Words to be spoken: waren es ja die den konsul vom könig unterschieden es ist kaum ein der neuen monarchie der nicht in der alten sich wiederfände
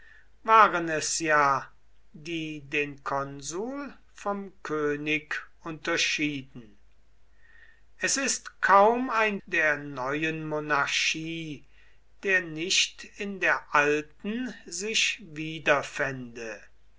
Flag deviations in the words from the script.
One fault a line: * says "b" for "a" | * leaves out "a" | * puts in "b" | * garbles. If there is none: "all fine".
all fine